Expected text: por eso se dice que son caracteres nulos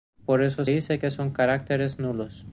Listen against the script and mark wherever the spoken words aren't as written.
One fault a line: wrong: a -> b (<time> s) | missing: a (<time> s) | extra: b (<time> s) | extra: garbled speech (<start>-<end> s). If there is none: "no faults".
missing: se (0.7 s)